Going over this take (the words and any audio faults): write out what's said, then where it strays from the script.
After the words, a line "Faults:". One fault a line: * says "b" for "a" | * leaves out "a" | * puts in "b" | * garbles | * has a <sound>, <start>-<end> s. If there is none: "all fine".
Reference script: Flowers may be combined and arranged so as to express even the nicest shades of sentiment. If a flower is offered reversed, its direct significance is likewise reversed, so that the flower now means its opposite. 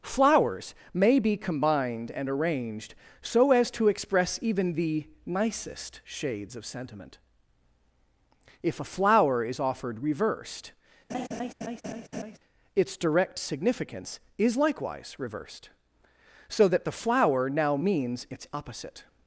Flowers may be combined and arranged so as to express even the nicest shades of sentiment. If a flower is offered reversed, its direct significance is likewise reversed, so that the flower now means its opposite.
Faults:
* has a laugh, 11.1-12.4 s